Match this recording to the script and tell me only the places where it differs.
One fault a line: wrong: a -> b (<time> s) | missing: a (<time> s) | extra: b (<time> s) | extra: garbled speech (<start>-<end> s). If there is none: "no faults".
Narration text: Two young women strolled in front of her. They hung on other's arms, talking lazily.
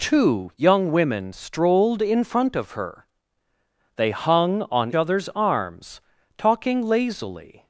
no faults